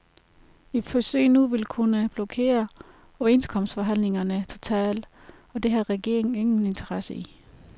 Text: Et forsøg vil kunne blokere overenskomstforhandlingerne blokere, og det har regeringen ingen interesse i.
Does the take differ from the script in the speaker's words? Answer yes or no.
yes